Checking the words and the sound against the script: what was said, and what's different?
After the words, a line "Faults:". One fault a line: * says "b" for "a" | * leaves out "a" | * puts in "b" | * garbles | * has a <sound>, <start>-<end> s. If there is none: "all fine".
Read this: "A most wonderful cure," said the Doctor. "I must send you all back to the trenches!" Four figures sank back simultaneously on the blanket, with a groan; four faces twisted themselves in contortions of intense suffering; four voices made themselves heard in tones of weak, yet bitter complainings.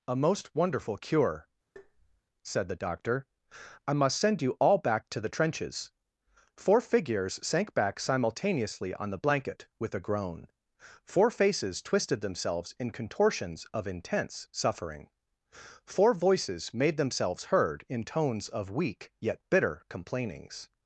"A most wonderful cure," said the Doctor. "I must send you all back to the trenches!" Four figures sank back simultaneously on the blanket, with a groan; four faces twisted themselves in contortions of intense suffering; four voices made themselves heard in tones of weak, yet bitter complainings.
Faults:
* has a tap, 1.8-2.2 s